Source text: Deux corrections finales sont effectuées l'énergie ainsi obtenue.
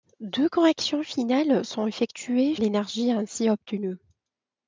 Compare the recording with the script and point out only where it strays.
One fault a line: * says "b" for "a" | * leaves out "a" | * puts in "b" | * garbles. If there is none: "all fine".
all fine